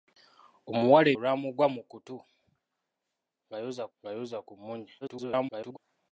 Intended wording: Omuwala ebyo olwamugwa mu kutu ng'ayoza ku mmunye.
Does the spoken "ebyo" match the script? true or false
false